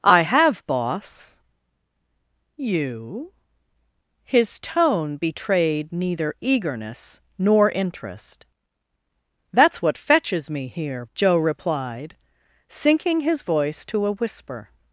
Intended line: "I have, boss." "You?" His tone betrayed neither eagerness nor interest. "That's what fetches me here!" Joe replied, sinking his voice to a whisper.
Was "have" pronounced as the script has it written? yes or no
yes